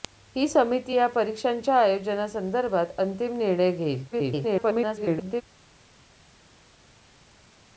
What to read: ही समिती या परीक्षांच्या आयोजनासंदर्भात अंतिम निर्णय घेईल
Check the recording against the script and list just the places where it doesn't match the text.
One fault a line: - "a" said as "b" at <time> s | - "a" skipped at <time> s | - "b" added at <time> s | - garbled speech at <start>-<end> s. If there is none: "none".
- garbled speech at 4.1-5.4 s